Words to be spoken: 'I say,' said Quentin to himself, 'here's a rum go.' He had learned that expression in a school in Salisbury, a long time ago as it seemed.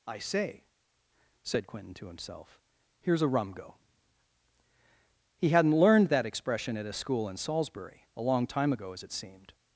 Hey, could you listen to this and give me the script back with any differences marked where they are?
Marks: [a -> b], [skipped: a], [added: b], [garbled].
'I say,' said Quentin to himself, 'here's a rum go.' He [had -> hadn't] learned that expression [in -> at] a school in Salisbury, a long time ago as it seemed.